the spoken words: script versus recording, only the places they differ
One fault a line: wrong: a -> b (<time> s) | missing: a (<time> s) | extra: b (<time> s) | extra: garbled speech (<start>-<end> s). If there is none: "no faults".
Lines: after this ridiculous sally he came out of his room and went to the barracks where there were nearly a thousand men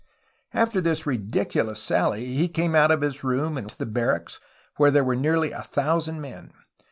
missing: went (3.7 s)